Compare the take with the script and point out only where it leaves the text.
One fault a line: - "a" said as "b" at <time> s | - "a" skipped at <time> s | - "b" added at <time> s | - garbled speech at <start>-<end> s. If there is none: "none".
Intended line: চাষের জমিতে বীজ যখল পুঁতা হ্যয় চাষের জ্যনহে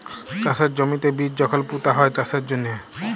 none